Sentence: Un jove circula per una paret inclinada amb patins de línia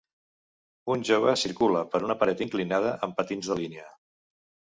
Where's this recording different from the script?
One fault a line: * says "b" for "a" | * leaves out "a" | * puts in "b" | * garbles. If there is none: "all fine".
all fine